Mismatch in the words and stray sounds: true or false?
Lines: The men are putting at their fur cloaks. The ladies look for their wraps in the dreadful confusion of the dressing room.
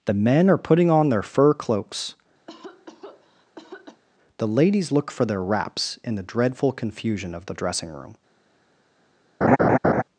true